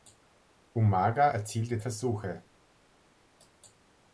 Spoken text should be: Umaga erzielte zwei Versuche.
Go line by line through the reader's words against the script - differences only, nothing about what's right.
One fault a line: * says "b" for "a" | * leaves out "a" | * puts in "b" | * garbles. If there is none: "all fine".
* leaves out "zwei"